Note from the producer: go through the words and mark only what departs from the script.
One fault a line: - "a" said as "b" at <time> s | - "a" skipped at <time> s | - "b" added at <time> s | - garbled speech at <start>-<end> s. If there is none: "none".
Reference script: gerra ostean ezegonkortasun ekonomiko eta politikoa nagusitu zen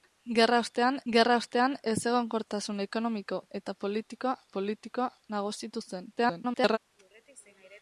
- "gerra ostean" added at 1.1 s
- "politikoa" added at 4.6 s
- garbled speech at 6.2-6.8 s